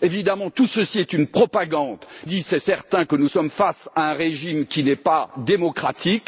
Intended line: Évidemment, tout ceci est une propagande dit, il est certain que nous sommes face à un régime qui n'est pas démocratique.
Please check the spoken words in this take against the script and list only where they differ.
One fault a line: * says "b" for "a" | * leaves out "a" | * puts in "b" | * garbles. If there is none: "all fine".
all fine